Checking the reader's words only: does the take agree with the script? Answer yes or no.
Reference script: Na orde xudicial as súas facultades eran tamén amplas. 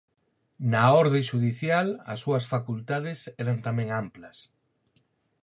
yes